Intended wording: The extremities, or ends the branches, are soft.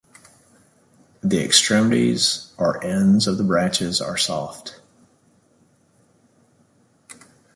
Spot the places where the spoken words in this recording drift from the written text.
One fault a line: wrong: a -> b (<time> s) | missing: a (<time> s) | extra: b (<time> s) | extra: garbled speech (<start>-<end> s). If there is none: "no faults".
extra: of (3.3 s)